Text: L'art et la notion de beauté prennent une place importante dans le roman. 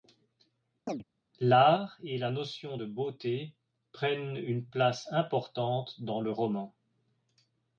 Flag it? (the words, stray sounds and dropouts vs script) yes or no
yes